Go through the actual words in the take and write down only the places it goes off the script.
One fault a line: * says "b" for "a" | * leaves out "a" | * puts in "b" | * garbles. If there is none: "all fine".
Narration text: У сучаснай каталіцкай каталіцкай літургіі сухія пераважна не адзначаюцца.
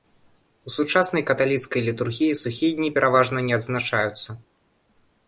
* leaves out "каталіцкай"
* puts in "дні"